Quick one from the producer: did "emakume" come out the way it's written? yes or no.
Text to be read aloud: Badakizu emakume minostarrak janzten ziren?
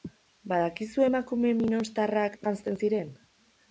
yes